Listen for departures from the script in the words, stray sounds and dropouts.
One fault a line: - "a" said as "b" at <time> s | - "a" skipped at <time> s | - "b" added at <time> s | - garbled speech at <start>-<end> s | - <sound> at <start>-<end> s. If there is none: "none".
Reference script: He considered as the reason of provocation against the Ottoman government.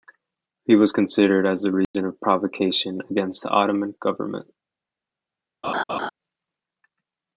- "was" added at 0.8 s
- dropout at 1.8-1.9 s
- laugh at 5.6-6.1 s